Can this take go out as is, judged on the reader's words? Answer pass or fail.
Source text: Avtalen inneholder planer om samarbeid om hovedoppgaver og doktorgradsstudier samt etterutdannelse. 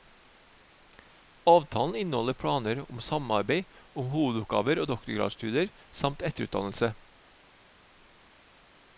pass